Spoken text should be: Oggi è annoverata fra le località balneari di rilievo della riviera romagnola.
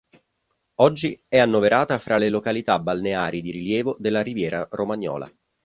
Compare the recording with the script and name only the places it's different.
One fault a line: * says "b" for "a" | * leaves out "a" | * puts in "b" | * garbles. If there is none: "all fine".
all fine